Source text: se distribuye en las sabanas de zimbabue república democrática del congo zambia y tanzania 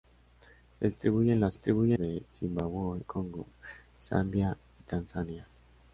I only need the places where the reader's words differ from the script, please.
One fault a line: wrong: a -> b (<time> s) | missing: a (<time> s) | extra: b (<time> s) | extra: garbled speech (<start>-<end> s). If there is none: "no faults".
wrong: sabanas -> distribuye (1.5 s)
missing: república democrática del (3.0 s)